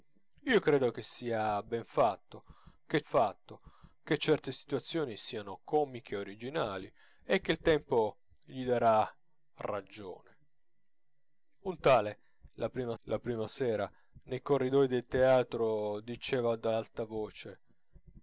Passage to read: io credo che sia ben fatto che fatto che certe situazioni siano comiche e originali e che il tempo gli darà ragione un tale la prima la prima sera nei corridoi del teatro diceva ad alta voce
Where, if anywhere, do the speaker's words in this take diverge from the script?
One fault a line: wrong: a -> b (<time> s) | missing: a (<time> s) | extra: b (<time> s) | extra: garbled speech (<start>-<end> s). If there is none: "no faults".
no faults